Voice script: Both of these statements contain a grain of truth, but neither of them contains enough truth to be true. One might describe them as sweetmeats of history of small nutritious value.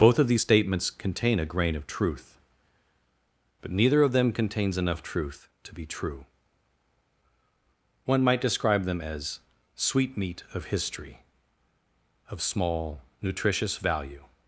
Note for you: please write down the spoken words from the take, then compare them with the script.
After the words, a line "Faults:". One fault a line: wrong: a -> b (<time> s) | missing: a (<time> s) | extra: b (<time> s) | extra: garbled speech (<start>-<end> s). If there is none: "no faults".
Both of these statements contain a grain of truth, but neither of them contains enough truth to be true. One might describe them as sweetmeat of history of small nutritious value.
Faults:
wrong: sweetmeats -> sweetmeat (9.7 s)